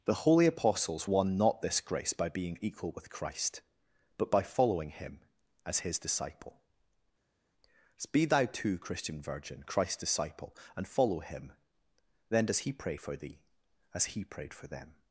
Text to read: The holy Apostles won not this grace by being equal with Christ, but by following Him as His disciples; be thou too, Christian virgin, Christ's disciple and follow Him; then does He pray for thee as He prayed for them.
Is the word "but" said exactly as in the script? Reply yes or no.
yes